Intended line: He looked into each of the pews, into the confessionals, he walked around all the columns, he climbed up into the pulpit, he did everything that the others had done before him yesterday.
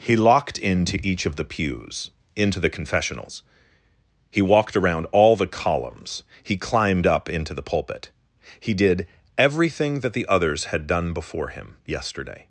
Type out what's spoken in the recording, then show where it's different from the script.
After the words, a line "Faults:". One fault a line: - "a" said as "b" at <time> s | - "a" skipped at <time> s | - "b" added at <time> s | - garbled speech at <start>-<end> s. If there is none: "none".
He locked into each of the pews, into the confessionals, he walked around all the columns, he climbed up into the pulpit, he did everything that the others had done before him yesterday.
Faults:
- "looked" said as "locked" at 0.1 s